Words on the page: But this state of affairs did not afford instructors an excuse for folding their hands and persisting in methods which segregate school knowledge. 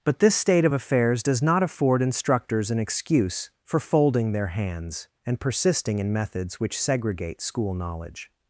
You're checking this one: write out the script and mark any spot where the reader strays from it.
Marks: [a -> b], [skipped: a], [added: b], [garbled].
But this state of affairs [did -> does] not afford instructors an excuse for folding their hands and persisting in methods which segregate school knowledge.